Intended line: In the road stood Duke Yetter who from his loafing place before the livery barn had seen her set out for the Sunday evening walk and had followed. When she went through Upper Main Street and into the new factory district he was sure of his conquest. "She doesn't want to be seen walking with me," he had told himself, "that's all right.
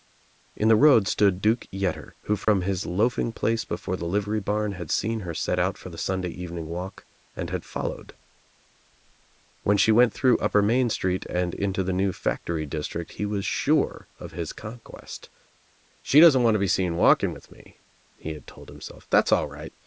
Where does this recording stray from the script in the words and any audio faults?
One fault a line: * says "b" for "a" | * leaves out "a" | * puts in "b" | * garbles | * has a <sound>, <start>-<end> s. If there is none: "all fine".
* has a dropout, 2.4-2.5 s